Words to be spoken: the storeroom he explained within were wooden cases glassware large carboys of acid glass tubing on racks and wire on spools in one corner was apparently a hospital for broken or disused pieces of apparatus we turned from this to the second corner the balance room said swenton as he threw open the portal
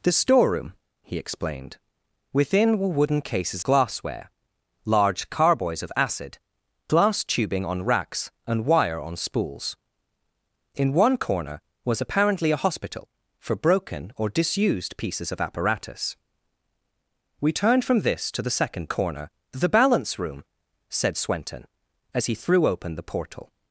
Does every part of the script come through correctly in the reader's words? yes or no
yes